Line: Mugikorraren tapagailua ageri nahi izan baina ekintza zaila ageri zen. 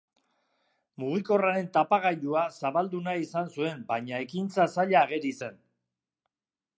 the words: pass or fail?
fail